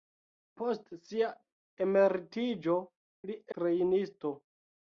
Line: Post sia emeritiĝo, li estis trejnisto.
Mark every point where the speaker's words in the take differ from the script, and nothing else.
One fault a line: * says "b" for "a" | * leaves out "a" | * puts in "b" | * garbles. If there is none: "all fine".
* leaves out "estis"